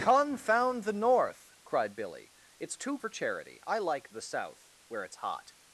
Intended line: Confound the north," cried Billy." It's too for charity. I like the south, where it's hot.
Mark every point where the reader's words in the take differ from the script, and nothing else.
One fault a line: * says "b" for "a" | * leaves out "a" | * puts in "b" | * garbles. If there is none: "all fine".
all fine